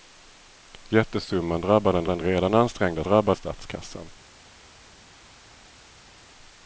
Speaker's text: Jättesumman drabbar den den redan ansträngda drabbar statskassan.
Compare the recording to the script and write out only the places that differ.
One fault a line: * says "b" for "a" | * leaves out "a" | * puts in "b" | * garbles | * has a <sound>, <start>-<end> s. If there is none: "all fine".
all fine